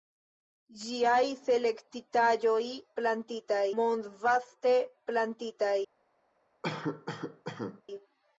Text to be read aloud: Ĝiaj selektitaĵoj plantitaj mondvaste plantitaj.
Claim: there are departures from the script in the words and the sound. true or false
true